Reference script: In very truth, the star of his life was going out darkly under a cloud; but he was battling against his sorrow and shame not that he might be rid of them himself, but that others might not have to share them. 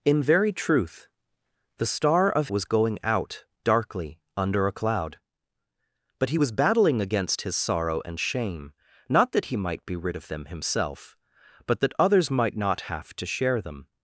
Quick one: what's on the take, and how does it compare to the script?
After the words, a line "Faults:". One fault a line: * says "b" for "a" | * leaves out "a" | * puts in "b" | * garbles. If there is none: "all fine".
In very truth, the star of was going out darkly under a cloud; but he was battling against his sorrow and shame not that he might be rid of them himself, but that others might not have to share them.
Faults:
* leaves out "his life"